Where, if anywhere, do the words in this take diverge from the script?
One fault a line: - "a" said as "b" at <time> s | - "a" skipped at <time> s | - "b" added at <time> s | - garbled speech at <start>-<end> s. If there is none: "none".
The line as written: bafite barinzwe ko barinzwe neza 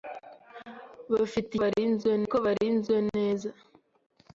none